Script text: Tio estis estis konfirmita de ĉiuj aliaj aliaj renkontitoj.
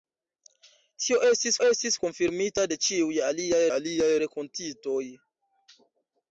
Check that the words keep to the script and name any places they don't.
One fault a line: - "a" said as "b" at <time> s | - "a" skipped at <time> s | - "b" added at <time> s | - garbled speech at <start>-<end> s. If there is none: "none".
none